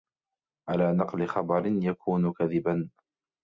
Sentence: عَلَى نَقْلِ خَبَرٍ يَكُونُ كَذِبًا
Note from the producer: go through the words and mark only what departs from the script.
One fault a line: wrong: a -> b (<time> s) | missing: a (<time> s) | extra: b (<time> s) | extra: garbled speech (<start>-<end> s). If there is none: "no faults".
no faults